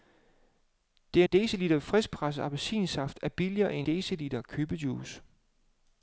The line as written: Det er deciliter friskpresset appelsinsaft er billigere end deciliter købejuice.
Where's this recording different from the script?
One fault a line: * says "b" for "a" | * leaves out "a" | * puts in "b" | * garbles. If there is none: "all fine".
all fine